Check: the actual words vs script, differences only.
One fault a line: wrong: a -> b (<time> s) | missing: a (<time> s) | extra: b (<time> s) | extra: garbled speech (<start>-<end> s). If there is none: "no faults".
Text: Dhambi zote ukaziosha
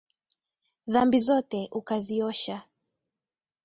no faults